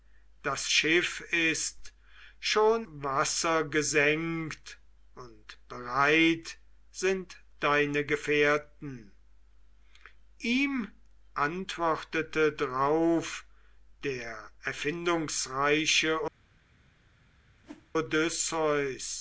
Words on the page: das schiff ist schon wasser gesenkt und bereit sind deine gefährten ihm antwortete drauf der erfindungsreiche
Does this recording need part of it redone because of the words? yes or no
no